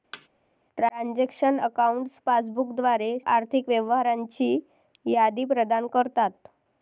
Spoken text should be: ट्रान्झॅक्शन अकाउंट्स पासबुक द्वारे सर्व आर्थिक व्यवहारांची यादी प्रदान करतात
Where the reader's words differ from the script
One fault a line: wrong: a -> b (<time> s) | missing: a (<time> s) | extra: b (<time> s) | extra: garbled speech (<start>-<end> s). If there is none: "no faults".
missing: सर्व (3.2 s)